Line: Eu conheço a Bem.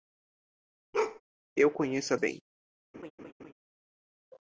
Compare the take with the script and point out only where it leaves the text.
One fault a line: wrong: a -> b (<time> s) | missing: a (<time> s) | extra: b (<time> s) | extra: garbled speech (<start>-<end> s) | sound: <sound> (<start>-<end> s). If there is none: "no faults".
sound: bark (0.9-1.2 s)
sound: laugh (2.9-3.5 s)